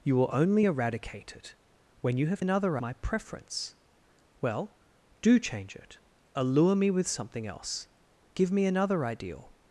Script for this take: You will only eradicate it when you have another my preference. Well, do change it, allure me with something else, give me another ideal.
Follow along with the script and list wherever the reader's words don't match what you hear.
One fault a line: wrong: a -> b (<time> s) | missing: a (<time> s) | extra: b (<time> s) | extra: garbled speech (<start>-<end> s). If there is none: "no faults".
no faults